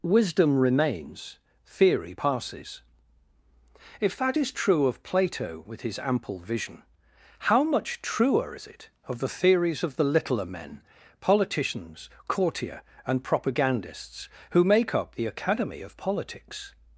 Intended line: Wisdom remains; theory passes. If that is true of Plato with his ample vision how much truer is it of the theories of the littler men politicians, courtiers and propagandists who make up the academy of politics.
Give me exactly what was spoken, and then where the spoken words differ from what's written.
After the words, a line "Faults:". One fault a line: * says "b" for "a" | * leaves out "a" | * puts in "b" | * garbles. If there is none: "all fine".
Wisdom remains; theory passes. If that is true of Plato with his ample vision how much truer is it of the theories of the littler men politicians, courtier and propagandists who make up the academy of politics.
Faults:
* says "courtier" for "courtiers"